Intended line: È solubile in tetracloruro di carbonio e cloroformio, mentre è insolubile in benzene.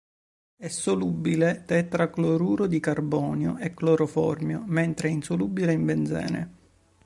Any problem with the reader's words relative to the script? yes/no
yes